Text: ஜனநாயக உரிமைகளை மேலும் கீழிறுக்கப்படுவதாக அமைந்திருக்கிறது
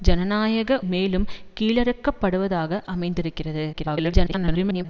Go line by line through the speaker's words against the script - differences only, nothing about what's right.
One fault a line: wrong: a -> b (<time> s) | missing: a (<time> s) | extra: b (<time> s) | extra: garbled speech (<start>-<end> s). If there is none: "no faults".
missing: உரிமைகளை (0.8 s)
extra: garbled speech (3.7-4.9 s)